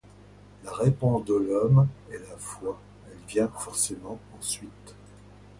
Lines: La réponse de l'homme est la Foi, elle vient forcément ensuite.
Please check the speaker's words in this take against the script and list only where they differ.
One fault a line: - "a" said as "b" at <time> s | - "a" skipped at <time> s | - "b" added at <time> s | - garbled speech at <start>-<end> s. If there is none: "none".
none